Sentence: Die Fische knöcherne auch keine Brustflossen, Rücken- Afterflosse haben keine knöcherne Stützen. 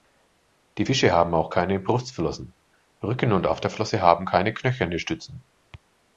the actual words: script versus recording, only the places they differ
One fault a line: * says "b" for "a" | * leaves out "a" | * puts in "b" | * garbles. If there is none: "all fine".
* says "haben" for "knöcherne"
* puts in "und"